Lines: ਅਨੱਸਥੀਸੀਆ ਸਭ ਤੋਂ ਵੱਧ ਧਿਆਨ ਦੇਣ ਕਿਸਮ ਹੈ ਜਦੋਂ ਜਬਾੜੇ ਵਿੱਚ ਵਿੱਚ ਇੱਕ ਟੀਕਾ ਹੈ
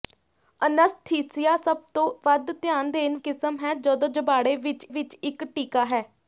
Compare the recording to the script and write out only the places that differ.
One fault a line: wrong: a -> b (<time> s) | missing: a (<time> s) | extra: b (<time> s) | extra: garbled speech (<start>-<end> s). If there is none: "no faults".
no faults